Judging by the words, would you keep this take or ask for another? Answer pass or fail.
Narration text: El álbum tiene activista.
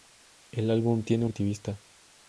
pass